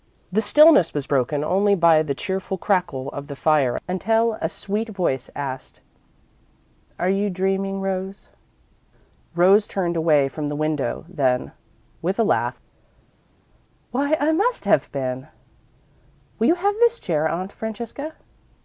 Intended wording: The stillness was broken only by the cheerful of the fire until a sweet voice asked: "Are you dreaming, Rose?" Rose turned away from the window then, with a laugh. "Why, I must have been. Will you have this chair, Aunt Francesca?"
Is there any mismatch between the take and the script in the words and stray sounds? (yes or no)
yes